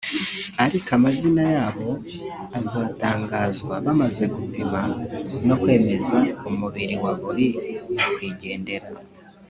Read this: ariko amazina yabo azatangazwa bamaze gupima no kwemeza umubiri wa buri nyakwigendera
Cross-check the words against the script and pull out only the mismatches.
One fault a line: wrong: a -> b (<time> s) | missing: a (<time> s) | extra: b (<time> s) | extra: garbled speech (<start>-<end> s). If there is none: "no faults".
no faults